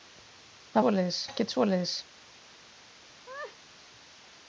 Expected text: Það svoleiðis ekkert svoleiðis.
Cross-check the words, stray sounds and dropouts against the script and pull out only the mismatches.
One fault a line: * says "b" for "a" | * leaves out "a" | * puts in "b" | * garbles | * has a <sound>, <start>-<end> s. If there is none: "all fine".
* has a laugh, 3.3-3.6 s